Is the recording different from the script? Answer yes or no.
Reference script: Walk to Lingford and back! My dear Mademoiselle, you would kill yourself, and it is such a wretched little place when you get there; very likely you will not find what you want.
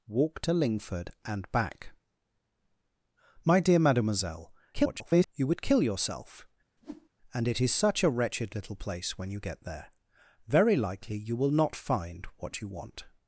yes